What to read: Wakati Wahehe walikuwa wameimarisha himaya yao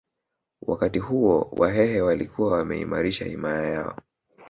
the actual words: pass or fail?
fail